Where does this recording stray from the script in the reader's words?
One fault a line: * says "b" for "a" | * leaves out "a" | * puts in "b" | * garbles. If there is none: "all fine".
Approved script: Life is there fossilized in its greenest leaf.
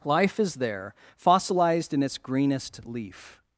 all fine